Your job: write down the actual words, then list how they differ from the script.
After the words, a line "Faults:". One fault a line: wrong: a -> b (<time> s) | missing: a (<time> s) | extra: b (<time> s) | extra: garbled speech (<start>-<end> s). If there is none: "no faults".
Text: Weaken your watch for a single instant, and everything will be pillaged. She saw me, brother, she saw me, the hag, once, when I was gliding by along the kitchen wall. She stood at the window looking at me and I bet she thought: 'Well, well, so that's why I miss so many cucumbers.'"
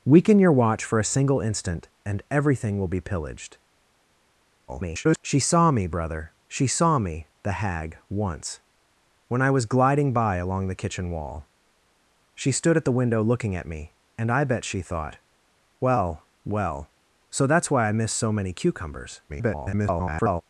Weaken your watch for a single instant, and everything will be pillaged. [garbled] She saw me, brother, she saw me, the hag, once, when I was gliding by along the kitchen wall. She stood at the window looking at me and I bet she thought: 'Well, well, so that's why I miss so many cucumbers.'" [garbled]
Faults:
extra: garbled speech (4.7-5.2 s)
extra: garbled speech (19.3-20.4 s)